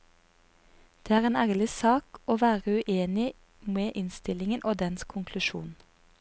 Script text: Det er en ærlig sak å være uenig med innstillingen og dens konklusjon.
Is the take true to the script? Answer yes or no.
yes